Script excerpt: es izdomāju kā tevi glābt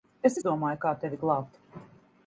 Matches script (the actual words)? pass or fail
pass